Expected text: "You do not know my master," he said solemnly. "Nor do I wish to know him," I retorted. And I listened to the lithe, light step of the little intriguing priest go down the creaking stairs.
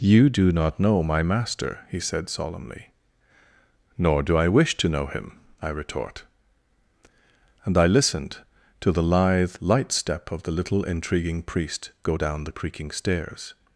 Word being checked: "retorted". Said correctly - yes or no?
no